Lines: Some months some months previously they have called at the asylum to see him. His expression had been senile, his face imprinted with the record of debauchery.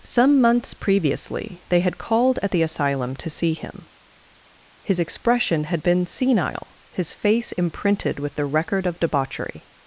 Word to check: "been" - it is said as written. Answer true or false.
true